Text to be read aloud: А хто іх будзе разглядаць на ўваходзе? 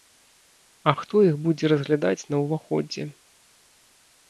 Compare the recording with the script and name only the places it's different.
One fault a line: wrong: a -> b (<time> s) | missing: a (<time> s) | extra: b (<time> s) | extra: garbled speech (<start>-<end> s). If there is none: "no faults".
no faults